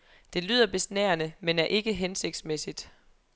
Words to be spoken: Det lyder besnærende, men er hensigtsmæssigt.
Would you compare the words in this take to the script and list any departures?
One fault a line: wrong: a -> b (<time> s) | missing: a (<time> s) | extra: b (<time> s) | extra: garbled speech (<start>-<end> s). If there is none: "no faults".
extra: ikke (1.7 s)